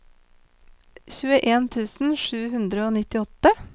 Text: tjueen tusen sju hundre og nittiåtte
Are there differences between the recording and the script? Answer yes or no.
no